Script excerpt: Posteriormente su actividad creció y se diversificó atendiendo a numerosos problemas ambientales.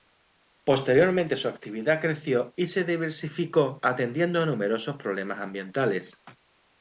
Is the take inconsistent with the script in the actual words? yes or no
no